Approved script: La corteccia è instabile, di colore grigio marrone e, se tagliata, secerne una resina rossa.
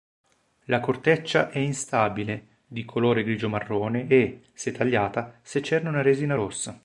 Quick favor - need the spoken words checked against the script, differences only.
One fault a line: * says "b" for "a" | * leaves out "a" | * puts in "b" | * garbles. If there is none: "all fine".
all fine